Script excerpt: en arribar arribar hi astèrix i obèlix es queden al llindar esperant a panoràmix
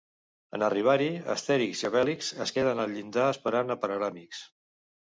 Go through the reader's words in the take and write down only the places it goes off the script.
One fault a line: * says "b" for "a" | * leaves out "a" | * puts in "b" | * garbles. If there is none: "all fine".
* leaves out "arribar"